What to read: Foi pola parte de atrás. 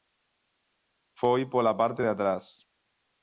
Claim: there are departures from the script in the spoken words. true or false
false